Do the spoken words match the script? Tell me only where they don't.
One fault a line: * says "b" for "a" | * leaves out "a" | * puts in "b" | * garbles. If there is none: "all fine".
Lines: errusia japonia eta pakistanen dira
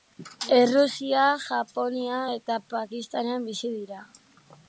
* puts in "bizi"